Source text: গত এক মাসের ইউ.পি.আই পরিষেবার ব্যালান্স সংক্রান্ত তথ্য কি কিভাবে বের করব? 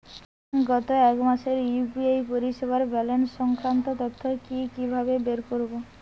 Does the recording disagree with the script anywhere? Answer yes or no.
no